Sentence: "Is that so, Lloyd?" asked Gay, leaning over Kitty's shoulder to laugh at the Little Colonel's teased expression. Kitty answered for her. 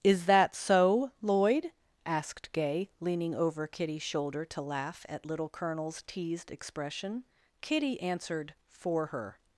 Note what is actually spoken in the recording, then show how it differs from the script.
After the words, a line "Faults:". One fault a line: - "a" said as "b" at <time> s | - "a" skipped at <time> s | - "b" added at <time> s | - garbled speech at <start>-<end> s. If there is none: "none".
"Is that so, Lloyd?" asked Gay, leaning over Kitty's shoulder to laugh at Little Colonel's teased expression. Kitty answered for her.
Faults:
- "the" skipped at 5.3 s